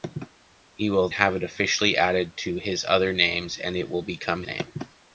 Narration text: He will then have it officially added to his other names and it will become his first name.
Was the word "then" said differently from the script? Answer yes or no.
yes